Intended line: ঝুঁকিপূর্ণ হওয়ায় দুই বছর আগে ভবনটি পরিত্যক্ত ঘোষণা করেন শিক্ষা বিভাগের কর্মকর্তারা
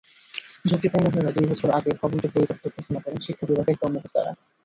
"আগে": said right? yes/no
yes